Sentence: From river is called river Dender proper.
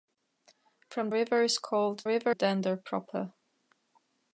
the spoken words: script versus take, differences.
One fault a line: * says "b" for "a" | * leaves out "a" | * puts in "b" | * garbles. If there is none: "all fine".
all fine